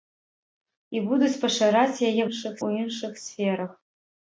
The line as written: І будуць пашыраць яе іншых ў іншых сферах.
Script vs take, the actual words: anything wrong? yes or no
no